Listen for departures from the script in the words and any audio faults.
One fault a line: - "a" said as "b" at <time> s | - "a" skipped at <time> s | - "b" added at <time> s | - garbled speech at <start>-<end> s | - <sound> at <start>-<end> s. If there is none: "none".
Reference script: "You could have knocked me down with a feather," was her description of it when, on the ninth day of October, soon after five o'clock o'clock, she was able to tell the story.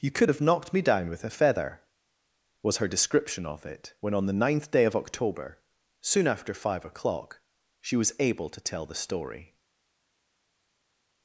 - "o'clock" skipped at 7.4 s